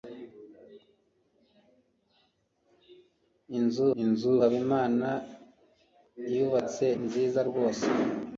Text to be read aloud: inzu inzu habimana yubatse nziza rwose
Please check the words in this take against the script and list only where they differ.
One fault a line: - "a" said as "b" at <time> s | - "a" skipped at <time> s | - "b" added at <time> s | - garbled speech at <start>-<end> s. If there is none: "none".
none